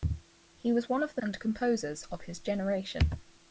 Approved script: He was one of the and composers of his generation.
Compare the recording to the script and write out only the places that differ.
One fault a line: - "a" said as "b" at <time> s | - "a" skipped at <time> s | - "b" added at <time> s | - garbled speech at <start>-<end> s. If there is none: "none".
none